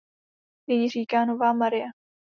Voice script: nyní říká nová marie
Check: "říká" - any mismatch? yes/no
no